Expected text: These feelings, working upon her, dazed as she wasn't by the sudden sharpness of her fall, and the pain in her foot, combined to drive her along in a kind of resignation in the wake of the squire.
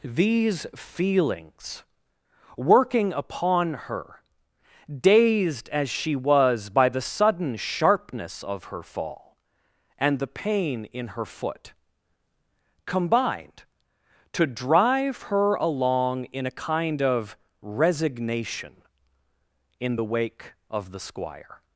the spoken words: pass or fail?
fail